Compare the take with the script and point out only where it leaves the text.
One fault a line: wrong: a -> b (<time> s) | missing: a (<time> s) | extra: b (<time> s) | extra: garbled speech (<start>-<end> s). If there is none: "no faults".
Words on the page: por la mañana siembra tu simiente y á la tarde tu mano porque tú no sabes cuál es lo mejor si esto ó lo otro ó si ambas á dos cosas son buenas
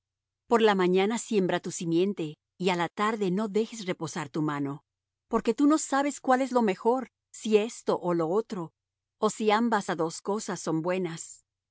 extra: no dejes reposar (3.3 s)